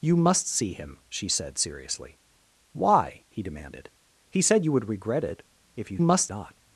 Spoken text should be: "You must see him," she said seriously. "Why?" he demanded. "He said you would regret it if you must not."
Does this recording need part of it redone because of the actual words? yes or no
no